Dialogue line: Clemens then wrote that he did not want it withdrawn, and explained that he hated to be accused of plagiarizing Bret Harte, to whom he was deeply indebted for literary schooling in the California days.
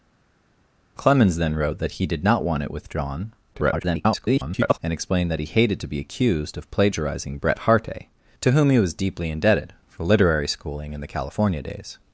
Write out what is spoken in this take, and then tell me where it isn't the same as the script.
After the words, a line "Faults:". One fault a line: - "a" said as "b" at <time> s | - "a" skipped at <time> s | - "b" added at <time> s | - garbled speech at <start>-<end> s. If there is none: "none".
Clemens then wrote that he did not want it withdrawn, [garbled] and explained that he hated to be accused of plagiarizing Bret Harte, to whom he was deeply indebted for literary schooling in the California days.
Faults:
- garbled speech at 3.5-4.8 s